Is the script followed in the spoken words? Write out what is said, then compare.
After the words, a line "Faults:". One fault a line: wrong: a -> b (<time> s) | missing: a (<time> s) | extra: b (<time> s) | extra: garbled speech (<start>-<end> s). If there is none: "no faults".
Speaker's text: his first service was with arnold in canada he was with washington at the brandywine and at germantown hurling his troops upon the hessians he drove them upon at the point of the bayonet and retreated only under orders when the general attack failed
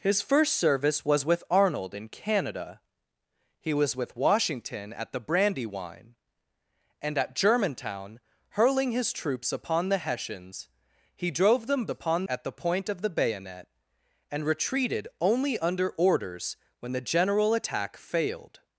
his first service was with arnold in canada he was with washington at the brandywine and at germantown hurling his troops upon the hessians he drove them upon at the point of the bayonet and retreated only under orders when the general attack failed
Faults:
no faults